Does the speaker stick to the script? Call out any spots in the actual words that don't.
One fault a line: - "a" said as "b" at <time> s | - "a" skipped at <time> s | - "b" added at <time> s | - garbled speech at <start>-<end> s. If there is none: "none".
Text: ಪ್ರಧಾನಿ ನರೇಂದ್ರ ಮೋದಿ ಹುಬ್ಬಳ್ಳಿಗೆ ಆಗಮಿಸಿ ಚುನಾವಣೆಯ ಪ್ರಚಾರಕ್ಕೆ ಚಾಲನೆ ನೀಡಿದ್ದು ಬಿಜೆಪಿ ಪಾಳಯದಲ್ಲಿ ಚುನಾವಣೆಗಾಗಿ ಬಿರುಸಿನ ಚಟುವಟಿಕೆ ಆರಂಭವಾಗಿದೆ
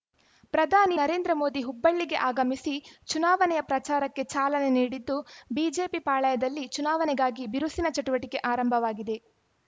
none